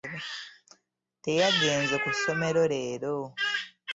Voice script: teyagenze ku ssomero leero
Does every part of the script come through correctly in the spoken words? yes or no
yes